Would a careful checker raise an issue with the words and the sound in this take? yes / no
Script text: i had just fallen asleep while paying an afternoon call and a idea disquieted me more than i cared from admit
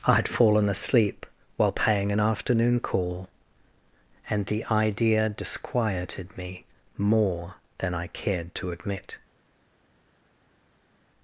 yes